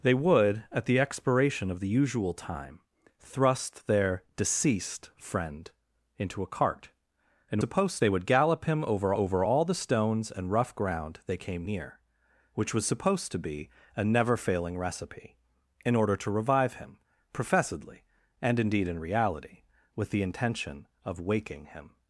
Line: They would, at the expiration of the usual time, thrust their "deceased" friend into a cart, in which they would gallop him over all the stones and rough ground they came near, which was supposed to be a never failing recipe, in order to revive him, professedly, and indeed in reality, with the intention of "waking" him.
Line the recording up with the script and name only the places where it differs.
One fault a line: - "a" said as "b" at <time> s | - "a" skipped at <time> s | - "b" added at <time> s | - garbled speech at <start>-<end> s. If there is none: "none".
- "which" said as "supposed" at 7.6 s
- "over" added at 9.1 s